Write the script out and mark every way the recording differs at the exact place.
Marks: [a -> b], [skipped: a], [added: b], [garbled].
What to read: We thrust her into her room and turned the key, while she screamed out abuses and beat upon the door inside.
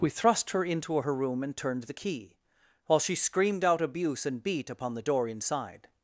We thrust her into her room and turned the key, while she screamed out [abuses -> abuse] and beat upon the door inside.